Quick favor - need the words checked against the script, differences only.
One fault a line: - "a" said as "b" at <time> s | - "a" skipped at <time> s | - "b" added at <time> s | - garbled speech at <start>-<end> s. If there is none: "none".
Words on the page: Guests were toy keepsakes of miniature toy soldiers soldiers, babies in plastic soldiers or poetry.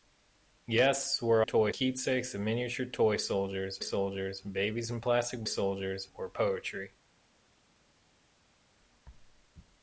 none